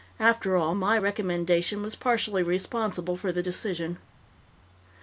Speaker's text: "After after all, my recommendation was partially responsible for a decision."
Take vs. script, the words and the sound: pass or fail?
fail